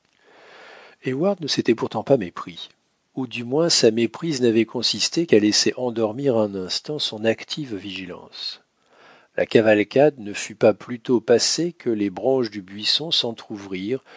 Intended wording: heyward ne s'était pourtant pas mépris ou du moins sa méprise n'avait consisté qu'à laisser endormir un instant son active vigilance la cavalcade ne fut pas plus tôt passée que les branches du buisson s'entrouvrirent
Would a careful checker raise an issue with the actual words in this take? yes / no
no